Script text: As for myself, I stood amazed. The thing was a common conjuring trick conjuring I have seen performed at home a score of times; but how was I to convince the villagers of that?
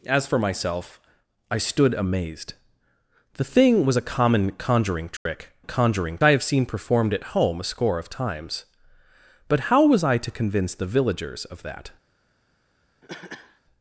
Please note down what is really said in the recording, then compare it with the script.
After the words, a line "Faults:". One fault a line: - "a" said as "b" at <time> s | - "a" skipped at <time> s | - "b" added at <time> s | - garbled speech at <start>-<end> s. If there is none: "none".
As for myself, I stood amazed. The thing was a common conjuring trick conjuring I have seen performed at home a score of times; but how was I to convince the villagers of that?
Faults:
none